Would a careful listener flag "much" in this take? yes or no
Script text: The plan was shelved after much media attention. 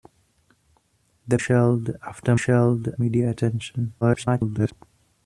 yes